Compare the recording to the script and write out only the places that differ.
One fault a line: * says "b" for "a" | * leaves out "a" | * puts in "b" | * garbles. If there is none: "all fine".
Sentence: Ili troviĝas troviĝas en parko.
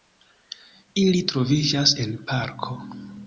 * leaves out "troviĝas"